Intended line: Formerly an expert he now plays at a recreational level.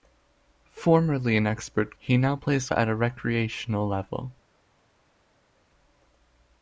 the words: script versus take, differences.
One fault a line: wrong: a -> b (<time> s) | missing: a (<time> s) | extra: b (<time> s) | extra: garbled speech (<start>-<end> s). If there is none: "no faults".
no faults